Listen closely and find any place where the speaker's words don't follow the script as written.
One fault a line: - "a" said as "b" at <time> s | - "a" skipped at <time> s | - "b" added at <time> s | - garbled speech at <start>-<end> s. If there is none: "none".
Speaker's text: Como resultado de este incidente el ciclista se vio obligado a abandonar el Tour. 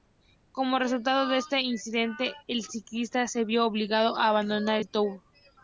none